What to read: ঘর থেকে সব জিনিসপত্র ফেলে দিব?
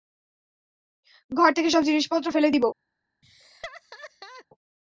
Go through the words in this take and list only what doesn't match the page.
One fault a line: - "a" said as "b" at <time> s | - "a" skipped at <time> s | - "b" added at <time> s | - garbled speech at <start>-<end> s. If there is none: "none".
none